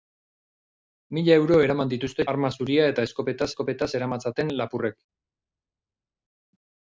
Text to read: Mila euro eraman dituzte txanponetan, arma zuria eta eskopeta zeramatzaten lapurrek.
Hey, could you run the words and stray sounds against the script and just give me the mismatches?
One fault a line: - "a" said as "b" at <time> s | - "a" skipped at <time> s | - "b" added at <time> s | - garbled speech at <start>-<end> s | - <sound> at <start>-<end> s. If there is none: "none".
- "txanponetan" skipped at 2.2 s
- "eskopeta" added at 3.5 s